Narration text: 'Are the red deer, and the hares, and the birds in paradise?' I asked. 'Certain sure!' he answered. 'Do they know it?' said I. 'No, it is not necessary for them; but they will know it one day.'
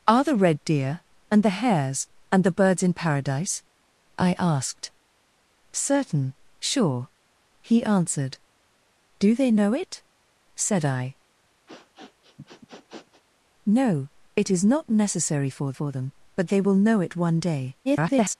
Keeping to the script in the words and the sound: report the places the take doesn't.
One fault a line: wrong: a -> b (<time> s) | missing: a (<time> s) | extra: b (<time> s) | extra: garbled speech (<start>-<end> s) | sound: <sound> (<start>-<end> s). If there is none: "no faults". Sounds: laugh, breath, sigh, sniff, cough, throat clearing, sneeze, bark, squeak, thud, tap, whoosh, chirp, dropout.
sound: sniff (11.7-13.2 s)
extra: for (15.7 s)
extra: garbled speech (17.8-18.4 s)